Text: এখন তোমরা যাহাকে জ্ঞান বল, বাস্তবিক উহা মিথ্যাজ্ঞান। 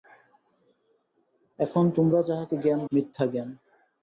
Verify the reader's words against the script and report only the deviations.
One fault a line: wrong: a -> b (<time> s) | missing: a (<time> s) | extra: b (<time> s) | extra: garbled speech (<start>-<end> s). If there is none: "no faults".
missing: বল বাস্তবিক উহা (2.8 s)